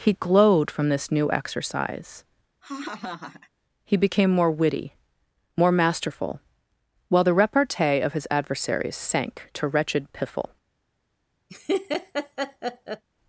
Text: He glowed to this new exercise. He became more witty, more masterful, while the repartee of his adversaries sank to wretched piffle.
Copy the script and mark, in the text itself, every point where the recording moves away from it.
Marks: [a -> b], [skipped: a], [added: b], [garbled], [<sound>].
He glowed [to -> from] this new exercise. [laugh] He became more witty, more masterful, while the repartee of his adversaries sank to wretched piffle. [laugh]